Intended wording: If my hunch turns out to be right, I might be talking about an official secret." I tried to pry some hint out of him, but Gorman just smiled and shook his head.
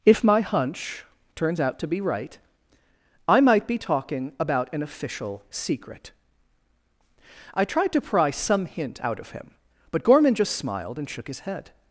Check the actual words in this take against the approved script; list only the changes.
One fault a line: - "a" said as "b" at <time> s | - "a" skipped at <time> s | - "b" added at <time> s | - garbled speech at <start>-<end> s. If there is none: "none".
none